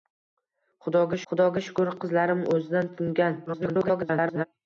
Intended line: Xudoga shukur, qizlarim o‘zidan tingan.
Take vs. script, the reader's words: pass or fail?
fail